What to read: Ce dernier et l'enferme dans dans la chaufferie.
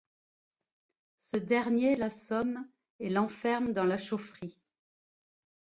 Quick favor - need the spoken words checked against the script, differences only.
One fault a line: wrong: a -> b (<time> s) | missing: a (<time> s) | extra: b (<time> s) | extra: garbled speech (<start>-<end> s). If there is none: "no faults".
extra: l'assomme (1.9 s)
missing: dans (3.8 s)